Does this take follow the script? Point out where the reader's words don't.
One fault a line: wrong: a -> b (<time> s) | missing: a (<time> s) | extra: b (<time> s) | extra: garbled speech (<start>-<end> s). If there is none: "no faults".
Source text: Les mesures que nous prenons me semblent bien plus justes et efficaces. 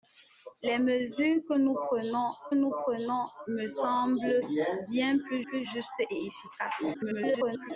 extra: nous prenons (2.6 s)
extra: plus (5.4 s)
extra: garbled speech (6.9-7.7 s)